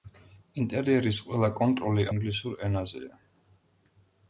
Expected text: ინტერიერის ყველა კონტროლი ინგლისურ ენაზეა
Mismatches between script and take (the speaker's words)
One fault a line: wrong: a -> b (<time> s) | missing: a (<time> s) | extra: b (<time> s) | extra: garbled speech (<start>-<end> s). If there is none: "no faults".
no faults